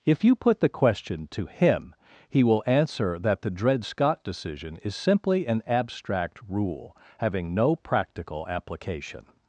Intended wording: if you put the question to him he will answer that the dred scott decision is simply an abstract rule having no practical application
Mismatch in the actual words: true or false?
false